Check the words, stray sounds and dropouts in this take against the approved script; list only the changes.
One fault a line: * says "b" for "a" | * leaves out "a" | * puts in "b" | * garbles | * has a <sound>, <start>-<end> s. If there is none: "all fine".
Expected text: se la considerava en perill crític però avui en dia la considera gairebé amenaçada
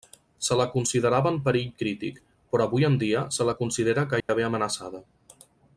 * puts in "se"
* has a dropout, 4.2-4.3 s